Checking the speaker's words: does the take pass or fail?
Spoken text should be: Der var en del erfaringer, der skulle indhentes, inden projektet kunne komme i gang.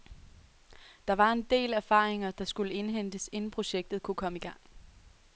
pass